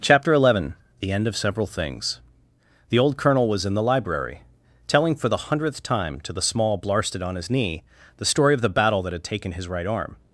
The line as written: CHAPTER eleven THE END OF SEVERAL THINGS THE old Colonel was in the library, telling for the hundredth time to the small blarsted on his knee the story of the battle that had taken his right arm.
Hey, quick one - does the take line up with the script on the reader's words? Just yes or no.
yes